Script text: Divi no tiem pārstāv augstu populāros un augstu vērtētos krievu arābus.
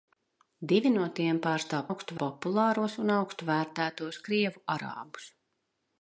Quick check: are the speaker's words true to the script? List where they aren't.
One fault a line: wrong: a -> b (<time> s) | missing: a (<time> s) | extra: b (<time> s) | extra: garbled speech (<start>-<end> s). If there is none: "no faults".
no faults